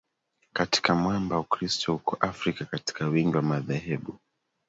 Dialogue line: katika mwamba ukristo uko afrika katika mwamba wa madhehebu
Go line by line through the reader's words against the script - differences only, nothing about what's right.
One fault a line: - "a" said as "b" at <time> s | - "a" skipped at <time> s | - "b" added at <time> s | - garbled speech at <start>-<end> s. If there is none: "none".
- "mwamba" said as "wingi" at 3.1 s